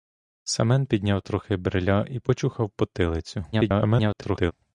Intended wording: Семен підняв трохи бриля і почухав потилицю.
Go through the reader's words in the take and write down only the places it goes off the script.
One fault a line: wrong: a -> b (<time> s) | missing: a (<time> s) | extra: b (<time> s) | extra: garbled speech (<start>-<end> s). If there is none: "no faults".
extra: garbled speech (3.5-4.5 s)